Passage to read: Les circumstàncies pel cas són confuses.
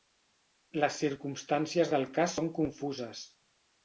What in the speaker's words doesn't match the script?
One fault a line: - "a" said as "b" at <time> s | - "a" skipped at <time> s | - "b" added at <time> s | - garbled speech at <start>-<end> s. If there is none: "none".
- "pel" said as "del" at 1.9 s